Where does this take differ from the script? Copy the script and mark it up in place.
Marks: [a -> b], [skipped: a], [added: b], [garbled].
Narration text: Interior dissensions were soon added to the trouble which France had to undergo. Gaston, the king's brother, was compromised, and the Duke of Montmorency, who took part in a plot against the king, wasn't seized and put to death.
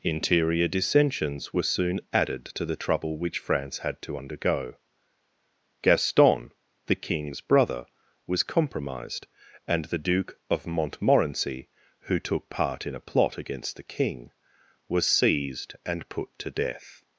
Interior dissensions were soon added to the trouble which France had to undergo. Gaston, the king's brother, was compromised, and the Duke of Montmorency, who took part in a plot against the king, [wasn't -> was] seized and put to death.